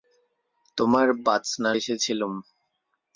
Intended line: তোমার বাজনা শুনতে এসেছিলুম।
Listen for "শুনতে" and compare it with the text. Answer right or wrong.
wrong